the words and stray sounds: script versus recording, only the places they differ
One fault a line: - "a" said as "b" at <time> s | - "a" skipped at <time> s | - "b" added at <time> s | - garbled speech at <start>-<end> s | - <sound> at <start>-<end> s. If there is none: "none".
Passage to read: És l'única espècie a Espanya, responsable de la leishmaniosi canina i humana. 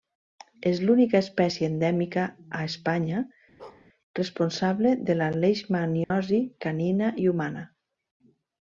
- "endèmica" added at 1.7 s
- bark at 3.6-3.9 s
- dropout at 6.0-6.1 s